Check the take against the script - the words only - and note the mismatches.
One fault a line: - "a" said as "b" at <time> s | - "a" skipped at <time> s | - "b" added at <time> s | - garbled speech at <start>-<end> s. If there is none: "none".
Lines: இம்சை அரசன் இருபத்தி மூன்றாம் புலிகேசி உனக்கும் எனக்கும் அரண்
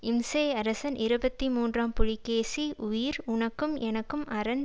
- "உயிர்" added at 2.9 s